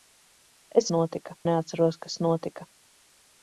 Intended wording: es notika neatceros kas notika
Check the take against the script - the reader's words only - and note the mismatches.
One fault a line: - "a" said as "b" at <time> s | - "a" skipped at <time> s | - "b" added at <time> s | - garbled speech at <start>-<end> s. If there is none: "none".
none